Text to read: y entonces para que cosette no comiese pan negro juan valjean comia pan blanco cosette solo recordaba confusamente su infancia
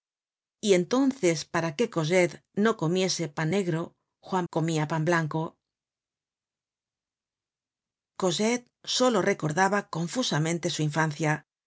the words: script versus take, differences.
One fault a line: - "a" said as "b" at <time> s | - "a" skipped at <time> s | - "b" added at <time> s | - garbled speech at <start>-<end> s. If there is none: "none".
- "valjean" skipped at 4.5 s